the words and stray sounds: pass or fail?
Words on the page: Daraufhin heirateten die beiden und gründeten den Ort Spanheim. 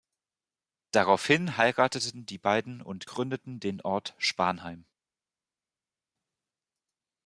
pass